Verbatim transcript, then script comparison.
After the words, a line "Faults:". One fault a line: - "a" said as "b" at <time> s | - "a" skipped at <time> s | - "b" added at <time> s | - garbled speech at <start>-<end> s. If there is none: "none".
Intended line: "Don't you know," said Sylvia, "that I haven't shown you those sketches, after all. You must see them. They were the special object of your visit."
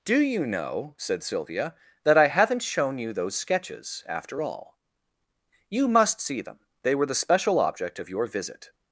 "Do you know," said Sylvia, "that I haven't shown you those sketches, after all. You must see them. They were the special object of your visit."
Faults:
- "Don't" said as "Do" at 0.0 s